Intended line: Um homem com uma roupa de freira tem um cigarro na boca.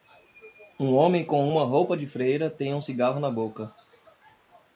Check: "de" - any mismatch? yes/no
no